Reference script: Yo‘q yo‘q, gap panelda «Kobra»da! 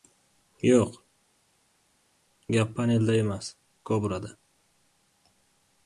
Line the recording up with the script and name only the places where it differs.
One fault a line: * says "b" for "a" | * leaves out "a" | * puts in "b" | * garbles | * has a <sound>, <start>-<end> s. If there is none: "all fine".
* leaves out "yo‘q"
* puts in "emas"